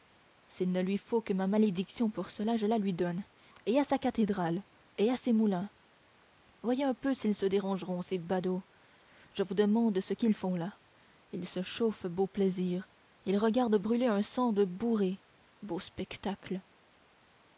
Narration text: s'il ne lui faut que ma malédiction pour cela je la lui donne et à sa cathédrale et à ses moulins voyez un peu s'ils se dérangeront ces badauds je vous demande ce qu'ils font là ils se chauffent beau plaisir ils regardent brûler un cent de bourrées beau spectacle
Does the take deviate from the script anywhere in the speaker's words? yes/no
no